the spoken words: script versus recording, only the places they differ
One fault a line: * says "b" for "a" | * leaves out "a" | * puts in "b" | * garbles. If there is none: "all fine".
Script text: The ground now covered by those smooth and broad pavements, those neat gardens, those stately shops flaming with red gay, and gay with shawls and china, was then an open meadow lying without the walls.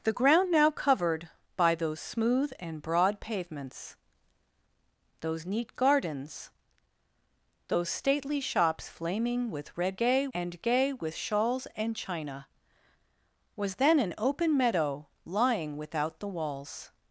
all fine